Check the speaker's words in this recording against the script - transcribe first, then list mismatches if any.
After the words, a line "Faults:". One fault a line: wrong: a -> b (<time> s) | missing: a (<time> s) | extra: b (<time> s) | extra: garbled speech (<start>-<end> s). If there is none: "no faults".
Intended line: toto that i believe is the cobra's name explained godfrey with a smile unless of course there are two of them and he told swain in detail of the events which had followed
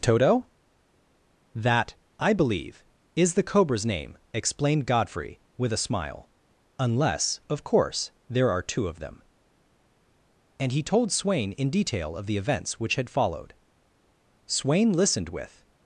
toto that i believe is the cobra's name explained godfrey with a smile unless of course there are two of them and he told swain in detail of the events which had followed swain listened with
Faults:
extra: swain listened with (14.5 s)